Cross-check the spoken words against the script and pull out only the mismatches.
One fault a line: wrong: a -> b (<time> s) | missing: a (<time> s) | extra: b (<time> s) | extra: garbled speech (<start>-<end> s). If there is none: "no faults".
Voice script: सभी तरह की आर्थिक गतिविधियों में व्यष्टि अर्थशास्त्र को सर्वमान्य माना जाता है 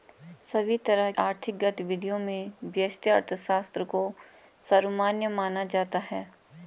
missing: की (1.1 s)